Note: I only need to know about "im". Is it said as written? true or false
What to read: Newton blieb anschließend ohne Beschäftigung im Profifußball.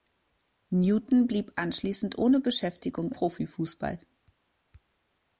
false